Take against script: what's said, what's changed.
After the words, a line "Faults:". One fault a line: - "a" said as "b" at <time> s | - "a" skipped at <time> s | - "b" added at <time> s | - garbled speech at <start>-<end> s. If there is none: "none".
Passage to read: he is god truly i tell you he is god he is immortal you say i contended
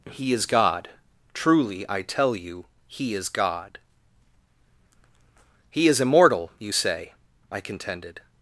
he is god truly i tell you he is god he is immortal you say i contended
Faults:
none